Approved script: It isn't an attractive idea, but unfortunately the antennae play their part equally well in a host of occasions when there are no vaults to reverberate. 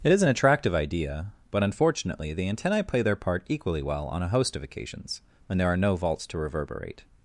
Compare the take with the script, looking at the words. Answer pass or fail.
fail